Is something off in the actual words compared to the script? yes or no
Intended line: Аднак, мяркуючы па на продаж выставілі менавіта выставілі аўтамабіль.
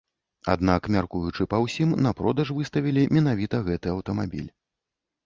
yes